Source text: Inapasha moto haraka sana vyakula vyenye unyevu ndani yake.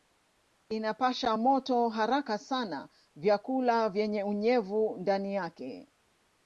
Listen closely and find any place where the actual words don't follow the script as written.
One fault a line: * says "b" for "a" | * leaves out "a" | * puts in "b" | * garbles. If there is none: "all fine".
all fine